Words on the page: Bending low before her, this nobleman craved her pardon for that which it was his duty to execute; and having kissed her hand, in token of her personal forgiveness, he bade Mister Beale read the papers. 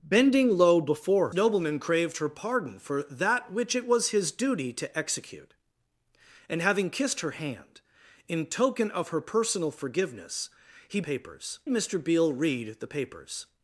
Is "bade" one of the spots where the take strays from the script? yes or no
yes